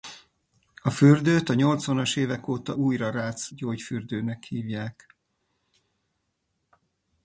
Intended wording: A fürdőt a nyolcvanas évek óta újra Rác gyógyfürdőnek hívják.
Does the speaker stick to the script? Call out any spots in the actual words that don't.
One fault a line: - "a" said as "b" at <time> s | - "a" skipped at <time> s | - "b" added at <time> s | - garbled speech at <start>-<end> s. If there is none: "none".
none